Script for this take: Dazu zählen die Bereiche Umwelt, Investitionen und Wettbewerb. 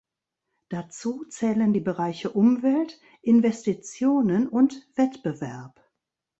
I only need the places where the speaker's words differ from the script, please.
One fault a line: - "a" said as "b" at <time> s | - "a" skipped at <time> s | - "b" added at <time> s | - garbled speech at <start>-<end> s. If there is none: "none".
none